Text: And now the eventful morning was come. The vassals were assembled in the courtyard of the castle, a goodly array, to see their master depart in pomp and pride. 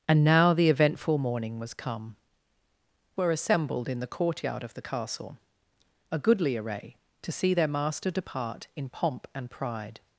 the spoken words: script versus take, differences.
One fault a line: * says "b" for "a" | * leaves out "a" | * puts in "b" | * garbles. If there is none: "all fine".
* leaves out "The vassals"